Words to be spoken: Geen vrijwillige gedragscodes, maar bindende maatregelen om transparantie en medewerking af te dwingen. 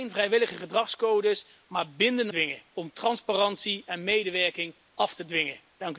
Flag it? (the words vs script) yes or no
yes